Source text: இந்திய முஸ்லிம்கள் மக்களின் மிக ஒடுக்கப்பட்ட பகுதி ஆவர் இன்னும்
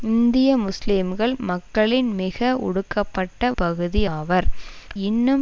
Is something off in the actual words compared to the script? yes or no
no